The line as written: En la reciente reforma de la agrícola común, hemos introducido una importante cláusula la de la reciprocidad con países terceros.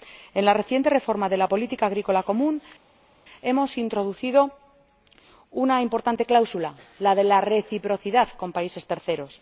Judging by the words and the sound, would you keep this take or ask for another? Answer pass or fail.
fail